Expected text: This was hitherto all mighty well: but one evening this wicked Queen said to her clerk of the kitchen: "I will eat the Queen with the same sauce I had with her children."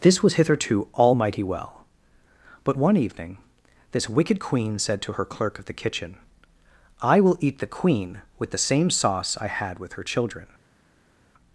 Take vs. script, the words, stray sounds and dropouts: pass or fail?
pass